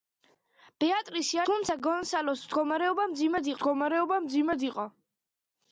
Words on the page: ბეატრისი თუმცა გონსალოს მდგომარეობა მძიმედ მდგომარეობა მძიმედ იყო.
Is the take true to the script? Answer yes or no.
yes